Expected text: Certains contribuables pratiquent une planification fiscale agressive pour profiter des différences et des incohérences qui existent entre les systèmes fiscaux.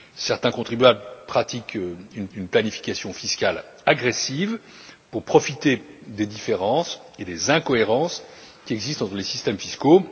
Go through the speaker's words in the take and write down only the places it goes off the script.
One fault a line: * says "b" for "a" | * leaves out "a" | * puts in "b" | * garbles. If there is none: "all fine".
* puts in "une"